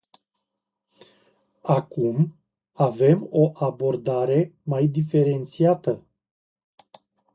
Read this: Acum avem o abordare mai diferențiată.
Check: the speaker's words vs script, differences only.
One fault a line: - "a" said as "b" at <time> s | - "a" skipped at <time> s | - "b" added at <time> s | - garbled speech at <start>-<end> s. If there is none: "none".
none